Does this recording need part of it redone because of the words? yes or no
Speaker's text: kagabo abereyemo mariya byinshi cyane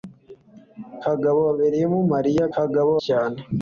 yes